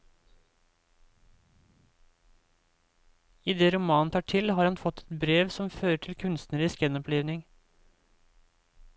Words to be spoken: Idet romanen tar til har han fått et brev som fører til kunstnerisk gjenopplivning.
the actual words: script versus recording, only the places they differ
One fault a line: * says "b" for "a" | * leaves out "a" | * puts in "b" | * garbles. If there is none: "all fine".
all fine